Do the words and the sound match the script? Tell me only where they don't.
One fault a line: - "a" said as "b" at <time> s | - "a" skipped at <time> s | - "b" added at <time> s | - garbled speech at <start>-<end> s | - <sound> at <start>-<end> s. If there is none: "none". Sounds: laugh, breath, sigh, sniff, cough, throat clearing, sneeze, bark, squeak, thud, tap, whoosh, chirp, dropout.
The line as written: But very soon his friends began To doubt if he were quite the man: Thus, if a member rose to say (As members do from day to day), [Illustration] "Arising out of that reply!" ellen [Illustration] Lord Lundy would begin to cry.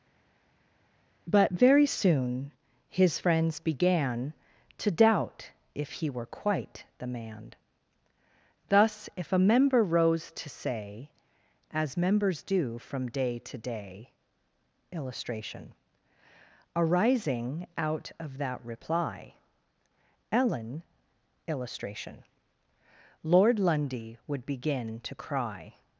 none